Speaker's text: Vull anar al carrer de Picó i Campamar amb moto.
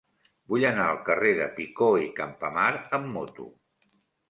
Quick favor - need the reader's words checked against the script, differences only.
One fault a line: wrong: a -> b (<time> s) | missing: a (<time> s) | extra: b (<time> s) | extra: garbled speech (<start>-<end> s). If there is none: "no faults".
no faults